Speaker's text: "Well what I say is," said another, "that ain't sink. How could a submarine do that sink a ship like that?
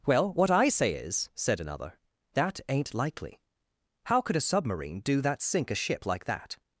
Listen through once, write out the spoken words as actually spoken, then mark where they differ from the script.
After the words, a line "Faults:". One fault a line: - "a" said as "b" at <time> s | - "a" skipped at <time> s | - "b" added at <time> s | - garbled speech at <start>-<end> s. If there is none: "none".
"Well what I say is," said another, "that ain't likely. How could a submarine do that sink a ship like that?
Faults:
- "sink" said as "likely" at 2.9 s